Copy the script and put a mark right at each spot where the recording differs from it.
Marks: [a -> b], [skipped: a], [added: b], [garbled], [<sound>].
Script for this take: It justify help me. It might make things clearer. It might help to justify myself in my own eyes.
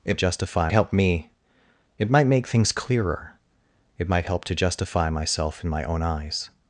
It justify help me. It might make things clearer. It might help to justify myself in my own eyes.